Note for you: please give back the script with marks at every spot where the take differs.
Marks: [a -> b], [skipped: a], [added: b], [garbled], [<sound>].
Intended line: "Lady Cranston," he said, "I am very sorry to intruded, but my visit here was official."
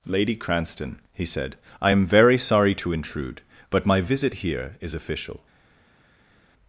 "Lady Cranston," he said, "I am very sorry to [intruded, -> intrude] but my visit here [was -> is] official."